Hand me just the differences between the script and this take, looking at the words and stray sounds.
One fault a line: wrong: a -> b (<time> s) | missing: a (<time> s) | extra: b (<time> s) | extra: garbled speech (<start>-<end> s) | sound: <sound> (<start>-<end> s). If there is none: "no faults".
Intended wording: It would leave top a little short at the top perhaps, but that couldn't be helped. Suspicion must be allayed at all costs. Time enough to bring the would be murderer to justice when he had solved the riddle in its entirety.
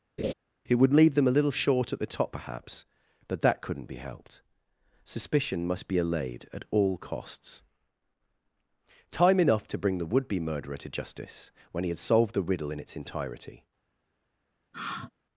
sound: laugh (0.2-0.3 s)
wrong: top -> them (1.1 s)
sound: sigh (14.7-15.1 s)